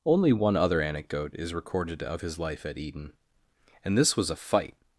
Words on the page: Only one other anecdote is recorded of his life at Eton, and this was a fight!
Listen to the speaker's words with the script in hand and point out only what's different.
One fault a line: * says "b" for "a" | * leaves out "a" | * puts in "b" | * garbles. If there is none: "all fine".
all fine